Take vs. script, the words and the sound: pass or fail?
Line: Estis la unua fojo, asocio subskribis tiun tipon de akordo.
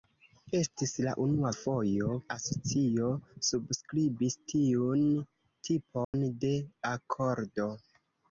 fail